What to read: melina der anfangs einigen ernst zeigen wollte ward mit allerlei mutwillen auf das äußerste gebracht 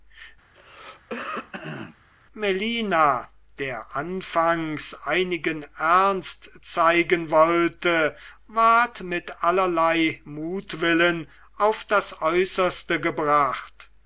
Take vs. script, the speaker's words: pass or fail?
pass